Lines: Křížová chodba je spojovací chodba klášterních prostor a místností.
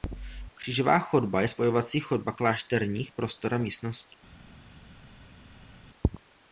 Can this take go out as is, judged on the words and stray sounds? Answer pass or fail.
pass